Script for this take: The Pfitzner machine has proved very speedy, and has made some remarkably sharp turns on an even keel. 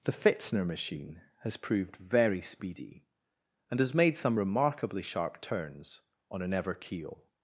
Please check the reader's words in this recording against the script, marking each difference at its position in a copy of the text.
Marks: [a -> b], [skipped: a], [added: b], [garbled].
The Pfitzner machine has proved very speedy, and has made some remarkably sharp turns on an [even -> ever] keel.